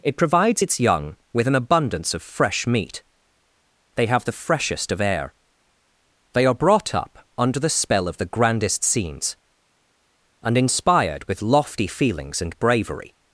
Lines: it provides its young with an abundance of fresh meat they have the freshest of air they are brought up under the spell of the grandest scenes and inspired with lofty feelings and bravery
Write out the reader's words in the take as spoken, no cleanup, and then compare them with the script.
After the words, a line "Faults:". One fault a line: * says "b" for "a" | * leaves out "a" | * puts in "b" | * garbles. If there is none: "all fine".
it provides its young with an abundance of fresh meat they have the freshest of air they are brought up under the spell of the grandest scenes and inspired with lofty feelings and bravery
Faults:
all fine